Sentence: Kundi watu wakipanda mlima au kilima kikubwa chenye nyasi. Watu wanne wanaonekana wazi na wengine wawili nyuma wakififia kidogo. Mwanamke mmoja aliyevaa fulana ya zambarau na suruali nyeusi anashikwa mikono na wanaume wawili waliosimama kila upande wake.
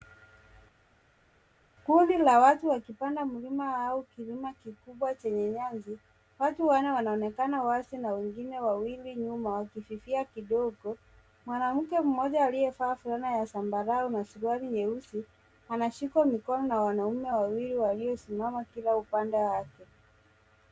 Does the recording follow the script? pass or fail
fail